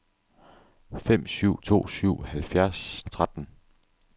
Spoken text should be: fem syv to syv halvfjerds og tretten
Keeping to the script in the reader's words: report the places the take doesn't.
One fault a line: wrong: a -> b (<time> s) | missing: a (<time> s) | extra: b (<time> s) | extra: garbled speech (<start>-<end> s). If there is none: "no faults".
no faults